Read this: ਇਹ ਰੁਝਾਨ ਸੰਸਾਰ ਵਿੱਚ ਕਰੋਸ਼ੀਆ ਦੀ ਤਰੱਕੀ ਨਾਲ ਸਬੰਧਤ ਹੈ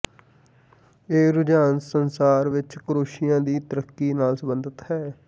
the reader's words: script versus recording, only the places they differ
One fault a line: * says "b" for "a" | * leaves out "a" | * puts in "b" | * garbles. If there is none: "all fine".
all fine